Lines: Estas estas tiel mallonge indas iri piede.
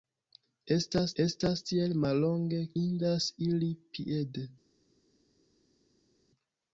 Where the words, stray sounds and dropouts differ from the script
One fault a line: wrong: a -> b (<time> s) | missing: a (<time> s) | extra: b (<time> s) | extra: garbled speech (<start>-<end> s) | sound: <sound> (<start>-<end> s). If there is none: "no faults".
no faults